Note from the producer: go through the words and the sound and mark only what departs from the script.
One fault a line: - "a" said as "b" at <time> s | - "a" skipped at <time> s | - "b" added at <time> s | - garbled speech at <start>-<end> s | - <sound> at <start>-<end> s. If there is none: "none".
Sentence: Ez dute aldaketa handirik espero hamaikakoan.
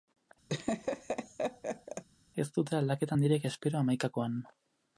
- laugh at 0.5-2.0 s